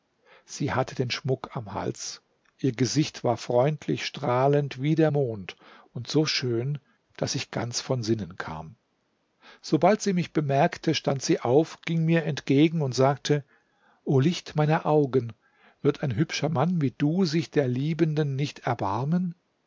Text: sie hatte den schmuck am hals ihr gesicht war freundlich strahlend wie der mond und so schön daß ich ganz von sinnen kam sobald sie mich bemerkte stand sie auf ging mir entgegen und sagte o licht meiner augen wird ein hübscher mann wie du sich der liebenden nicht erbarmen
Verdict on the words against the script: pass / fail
pass